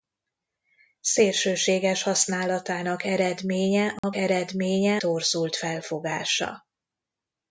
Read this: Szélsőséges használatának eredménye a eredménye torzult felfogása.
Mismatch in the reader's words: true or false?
false